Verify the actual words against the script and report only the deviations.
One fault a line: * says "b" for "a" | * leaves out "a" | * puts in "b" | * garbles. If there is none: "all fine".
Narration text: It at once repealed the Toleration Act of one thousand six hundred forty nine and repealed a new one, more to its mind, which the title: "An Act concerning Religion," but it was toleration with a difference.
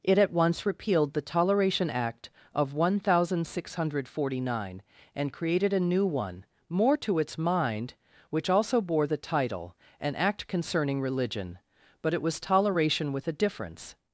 * says "created" for "repealed"
* puts in "also bore"